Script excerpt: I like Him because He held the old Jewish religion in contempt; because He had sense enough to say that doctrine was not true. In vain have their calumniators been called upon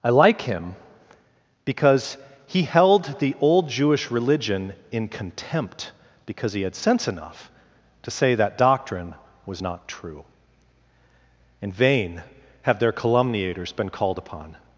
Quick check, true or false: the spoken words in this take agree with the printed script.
true